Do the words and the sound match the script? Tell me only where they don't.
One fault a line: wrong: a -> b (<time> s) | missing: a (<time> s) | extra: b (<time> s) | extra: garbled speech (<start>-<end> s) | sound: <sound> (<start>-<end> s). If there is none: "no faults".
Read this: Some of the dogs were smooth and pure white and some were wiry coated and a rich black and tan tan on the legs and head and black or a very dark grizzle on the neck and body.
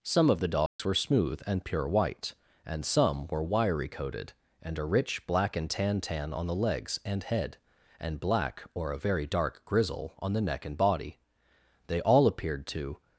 sound: dropout (0.7-0.8 s)
extra: They all appeared to (11.9 s)